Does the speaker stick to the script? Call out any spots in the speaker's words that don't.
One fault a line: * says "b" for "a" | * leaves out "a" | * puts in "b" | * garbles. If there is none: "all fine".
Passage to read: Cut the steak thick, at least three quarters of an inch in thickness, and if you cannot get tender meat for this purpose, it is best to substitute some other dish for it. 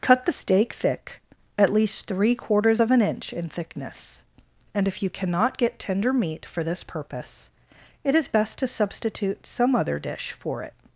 all fine